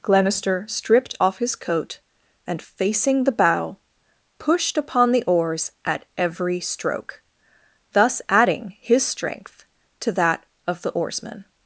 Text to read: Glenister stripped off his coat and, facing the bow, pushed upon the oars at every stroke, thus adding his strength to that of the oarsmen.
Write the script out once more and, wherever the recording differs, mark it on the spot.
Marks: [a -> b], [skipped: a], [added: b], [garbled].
Glenister stripped off his coat and, facing the bow, pushed upon the oars at every stroke, thus adding his strength to that of the oarsmen.